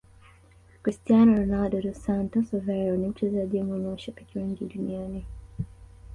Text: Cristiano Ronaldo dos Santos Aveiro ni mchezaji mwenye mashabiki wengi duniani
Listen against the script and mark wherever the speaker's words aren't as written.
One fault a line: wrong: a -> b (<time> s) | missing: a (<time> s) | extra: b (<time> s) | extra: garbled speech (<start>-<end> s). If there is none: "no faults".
no faults